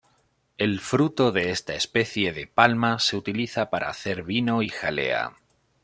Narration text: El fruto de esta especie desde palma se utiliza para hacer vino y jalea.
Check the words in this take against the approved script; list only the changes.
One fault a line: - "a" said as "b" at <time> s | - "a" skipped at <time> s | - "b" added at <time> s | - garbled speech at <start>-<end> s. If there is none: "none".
- "desde" said as "de" at 2.3 s